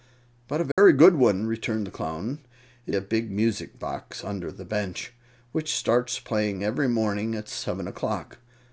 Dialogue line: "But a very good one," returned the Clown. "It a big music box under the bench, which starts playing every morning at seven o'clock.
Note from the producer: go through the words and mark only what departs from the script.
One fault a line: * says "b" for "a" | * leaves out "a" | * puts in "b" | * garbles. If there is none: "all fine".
all fine